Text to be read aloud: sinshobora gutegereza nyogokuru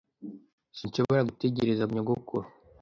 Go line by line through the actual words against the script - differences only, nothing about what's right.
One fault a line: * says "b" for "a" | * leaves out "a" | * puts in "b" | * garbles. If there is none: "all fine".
all fine